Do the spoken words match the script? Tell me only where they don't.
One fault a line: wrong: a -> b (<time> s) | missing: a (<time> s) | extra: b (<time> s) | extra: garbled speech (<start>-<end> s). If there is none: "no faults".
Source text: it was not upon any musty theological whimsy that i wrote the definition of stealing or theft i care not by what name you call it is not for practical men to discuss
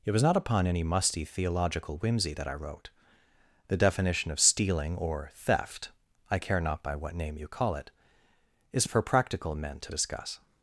missing: not (8.9 s)